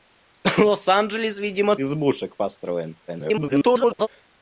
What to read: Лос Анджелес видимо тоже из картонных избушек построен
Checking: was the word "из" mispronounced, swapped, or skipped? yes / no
yes